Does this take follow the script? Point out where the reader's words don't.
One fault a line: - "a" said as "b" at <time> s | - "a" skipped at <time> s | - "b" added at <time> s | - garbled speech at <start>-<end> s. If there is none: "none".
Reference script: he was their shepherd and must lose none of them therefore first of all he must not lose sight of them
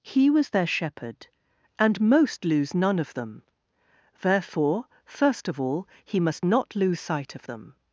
- "must" said as "most" at 2.0 s